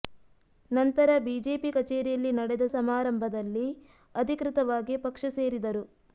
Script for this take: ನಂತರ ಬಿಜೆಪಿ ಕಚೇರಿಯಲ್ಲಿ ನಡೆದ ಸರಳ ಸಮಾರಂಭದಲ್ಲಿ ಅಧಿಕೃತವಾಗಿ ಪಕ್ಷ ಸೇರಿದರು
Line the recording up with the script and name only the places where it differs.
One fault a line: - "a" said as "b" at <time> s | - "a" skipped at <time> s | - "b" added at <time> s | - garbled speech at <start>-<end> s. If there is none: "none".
- "ಸರಳ" skipped at 2.7 s